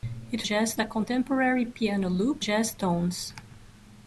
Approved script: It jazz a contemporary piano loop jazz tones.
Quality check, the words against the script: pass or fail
pass